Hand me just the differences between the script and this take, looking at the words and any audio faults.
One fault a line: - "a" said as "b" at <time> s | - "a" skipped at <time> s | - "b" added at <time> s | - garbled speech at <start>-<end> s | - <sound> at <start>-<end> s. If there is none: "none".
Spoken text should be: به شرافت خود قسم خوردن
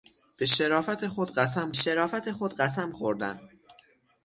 - "شرافت خود قسم" added at 1.7 s